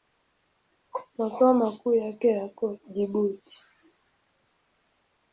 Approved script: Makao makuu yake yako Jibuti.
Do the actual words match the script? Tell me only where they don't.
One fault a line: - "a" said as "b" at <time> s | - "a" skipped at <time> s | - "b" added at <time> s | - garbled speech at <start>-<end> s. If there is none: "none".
none